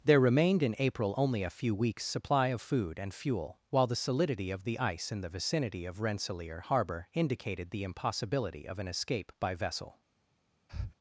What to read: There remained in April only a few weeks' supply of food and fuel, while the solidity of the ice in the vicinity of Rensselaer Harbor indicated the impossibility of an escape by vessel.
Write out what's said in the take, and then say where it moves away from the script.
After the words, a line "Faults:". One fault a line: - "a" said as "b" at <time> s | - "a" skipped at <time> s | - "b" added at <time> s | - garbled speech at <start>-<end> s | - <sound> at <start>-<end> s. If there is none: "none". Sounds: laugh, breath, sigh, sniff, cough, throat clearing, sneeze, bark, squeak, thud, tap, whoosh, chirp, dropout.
There remained in April only a few weeks' supply of food and fuel, while the solidity of the ice in the vicinity of Rensselaer Harbor indicated the impossibility of an escape by vessel.
Faults:
- breath at 10.7-10.9 s